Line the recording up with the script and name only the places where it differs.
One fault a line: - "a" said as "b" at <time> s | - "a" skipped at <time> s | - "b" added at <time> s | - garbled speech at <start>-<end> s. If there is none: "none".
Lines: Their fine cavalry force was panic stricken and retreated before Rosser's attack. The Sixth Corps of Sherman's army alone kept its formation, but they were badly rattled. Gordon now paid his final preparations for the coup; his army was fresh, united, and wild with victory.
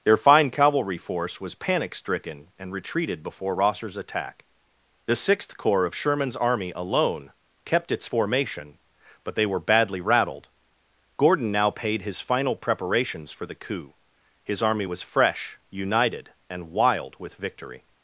none